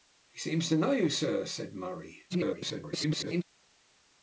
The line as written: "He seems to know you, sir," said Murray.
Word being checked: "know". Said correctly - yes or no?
yes